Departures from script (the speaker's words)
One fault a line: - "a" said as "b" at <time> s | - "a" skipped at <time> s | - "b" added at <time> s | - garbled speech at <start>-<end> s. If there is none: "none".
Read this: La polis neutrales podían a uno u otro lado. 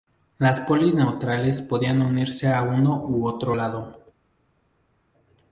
- "La" said as "Las" at 0.4 s
- "unirse" added at 2.0 s